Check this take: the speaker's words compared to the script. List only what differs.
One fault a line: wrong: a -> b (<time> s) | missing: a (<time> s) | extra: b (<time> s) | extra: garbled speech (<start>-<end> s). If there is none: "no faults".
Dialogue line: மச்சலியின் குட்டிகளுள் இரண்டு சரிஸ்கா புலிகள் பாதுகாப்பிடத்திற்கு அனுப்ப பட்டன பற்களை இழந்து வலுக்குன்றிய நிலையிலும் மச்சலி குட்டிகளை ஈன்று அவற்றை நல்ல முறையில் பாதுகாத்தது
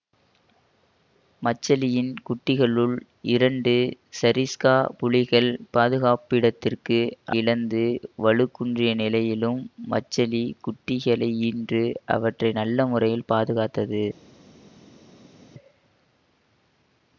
missing: அனுப்ப பட்டன பற்களை (7.0 s)